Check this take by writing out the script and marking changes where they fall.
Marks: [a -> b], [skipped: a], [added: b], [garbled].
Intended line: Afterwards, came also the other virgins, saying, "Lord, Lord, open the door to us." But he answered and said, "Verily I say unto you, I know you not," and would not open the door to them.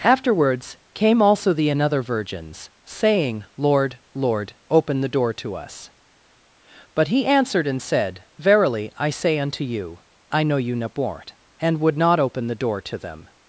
Afterwards, came also the [other -> another] virgins, saying, "Lord, Lord, open the door to us." But he answered and said, "Verily I say unto you, I know you not," and would not open the door to them.